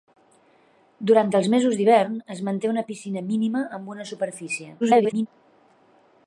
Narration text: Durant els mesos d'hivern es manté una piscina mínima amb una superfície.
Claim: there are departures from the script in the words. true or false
true